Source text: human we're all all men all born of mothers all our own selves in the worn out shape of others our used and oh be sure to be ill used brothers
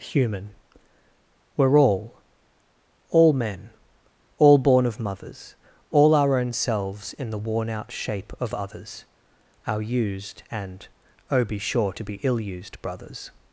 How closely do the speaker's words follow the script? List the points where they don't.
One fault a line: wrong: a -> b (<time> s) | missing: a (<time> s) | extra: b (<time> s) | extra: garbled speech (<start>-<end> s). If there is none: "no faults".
no faults